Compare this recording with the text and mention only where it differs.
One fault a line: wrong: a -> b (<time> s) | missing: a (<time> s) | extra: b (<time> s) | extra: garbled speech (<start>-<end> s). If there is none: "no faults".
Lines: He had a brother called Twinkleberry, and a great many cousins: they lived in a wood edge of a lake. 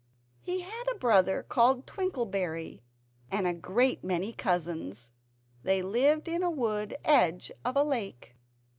no faults